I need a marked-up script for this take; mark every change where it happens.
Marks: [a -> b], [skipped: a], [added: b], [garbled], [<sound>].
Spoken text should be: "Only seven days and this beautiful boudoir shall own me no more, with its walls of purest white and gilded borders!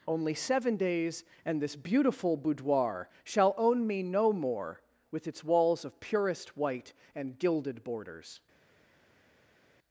"Only seven days and this beautiful boudoir shall own me no more, with its walls of purest white and gilded borders!